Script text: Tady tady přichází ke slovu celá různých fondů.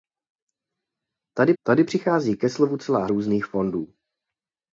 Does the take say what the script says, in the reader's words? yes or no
yes